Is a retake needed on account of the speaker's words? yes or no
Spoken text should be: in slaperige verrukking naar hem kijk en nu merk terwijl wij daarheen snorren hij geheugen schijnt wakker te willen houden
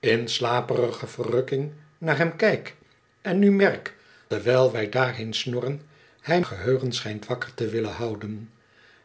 no